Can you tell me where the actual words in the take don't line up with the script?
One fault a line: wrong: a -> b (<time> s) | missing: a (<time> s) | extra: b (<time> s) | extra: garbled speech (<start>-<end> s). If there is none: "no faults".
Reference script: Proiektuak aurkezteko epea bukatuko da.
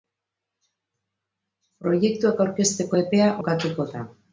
no faults